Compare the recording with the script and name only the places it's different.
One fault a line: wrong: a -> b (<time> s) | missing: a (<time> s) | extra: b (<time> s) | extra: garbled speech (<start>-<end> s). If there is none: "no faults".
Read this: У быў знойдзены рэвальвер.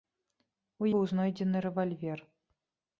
no faults